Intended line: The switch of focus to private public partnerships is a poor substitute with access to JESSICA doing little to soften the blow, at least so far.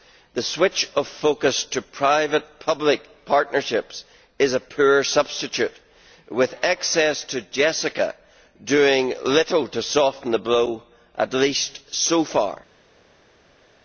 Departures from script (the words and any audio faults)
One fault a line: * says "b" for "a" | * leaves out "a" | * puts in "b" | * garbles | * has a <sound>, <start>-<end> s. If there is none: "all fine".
all fine